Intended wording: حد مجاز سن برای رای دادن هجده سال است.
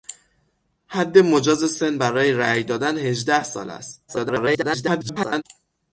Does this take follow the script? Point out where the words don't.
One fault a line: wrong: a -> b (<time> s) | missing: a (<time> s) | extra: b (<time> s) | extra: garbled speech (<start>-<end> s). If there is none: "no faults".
extra: garbled speech (4.1-5.4 s)